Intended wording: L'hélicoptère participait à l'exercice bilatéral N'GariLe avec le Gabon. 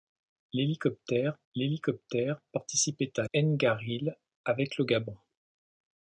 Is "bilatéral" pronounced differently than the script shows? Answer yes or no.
yes